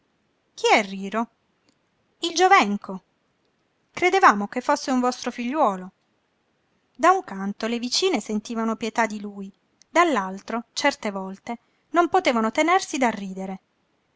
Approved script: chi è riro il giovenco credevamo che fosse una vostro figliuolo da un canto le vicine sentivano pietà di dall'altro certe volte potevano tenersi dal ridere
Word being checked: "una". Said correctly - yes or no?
no